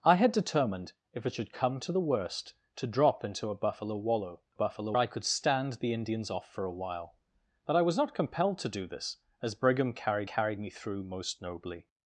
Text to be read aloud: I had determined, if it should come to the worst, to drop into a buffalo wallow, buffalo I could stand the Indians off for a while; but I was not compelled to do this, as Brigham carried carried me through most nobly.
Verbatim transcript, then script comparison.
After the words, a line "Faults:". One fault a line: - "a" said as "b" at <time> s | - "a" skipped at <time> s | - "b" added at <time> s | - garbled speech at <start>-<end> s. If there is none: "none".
I had determined, if it should come to the worst, to drop into a buffalo wallow, buffalo I could stand the Indians off for a while; but I was not compelled to do this, as Brigham carried carried me through most nobly.
Faults:
none